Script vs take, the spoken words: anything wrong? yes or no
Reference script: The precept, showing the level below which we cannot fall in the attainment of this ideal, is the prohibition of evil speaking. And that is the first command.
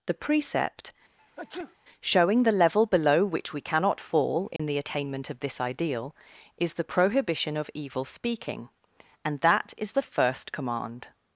no